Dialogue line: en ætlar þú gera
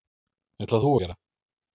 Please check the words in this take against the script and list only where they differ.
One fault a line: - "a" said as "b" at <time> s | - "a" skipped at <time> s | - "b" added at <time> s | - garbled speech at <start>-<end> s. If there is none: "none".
none